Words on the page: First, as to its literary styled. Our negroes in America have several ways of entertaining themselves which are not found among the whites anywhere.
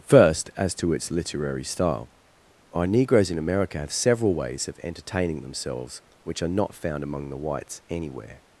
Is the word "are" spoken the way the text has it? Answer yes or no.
yes